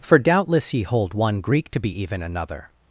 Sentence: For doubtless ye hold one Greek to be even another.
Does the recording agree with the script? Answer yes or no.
yes